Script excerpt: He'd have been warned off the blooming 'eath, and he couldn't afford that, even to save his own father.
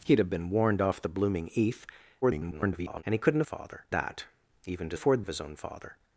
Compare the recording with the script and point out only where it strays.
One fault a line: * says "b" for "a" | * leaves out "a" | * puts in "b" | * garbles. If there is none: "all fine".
* garbles
* says "father" for "afford"
* says "afford" for "save"